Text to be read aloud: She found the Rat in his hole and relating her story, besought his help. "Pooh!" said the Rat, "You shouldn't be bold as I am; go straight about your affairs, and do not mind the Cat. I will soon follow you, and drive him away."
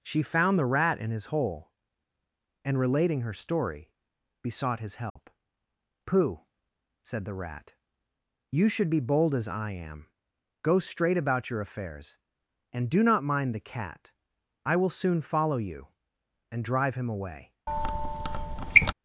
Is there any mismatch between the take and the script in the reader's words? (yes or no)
yes